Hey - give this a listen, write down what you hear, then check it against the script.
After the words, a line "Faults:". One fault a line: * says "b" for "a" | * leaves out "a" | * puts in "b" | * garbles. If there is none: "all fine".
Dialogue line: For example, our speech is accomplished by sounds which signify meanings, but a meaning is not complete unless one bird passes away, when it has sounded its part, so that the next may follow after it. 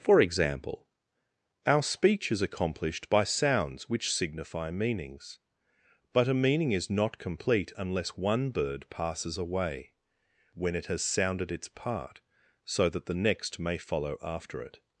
For example, our speech is accomplished by sounds which signify meanings, but a meaning is not complete unless one bird passes away, when it has sounded its part, so that the next may follow after it.
Faults:
all fine